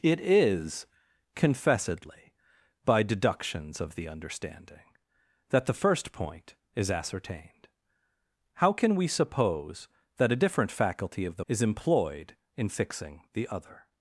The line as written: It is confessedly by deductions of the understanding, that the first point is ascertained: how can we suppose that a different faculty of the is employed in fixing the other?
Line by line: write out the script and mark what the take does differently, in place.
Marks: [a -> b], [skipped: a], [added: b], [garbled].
It is confessedly by deductions of the understanding, that the first point is ascertained: how can we suppose that a different faculty of the is employed in fixing the other?